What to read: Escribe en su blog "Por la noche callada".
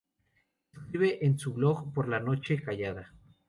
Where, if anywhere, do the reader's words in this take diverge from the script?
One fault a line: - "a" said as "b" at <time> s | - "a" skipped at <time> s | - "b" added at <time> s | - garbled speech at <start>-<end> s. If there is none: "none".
none